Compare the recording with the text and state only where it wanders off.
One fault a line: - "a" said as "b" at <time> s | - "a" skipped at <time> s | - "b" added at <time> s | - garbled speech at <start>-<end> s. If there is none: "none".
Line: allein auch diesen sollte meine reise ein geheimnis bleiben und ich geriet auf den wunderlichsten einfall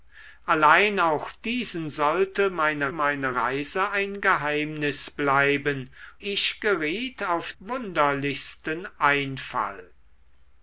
- "meine" added at 2.9 s
- "und" skipped at 5.9 s
- "den" skipped at 7.5 s